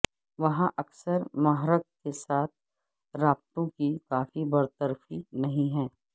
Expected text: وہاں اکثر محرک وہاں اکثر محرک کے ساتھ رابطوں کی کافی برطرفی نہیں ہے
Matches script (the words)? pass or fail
fail